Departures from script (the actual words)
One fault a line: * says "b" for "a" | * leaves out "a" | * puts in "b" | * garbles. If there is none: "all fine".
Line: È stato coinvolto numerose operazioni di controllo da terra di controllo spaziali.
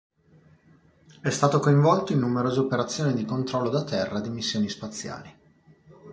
* puts in "in"
* says "missioni" for "controllo"